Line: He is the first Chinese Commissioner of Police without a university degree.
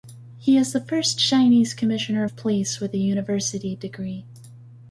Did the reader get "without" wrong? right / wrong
wrong